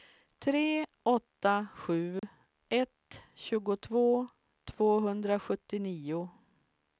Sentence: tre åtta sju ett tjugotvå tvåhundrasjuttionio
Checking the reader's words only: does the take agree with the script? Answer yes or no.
yes